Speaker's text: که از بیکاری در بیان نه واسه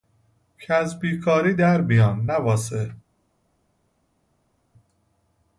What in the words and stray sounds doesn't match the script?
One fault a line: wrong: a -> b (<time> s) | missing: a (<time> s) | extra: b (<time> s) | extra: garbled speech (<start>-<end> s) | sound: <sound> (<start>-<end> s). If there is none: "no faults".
no faults